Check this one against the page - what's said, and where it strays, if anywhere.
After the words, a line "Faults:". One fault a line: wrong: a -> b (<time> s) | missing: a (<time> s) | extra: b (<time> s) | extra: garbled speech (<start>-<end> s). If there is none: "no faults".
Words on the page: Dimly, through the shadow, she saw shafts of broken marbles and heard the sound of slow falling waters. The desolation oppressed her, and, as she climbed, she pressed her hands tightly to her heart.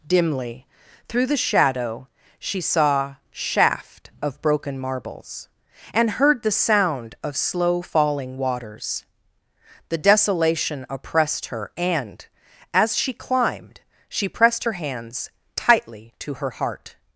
Dimly, through the shadow, she saw shaft of broken marbles and heard the sound of slow falling waters. The desolation oppressed her, and, as she climbed, she pressed her hands tightly to her heart.
Faults:
wrong: shafts -> shaft (3.3 s)